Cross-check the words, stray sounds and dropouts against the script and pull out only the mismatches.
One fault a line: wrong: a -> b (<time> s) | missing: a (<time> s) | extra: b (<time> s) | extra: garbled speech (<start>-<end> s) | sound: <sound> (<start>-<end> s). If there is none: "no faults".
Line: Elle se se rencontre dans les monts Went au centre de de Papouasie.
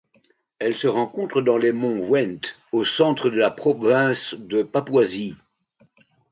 missing: se (0.9 s)
extra: la province (3.4 s)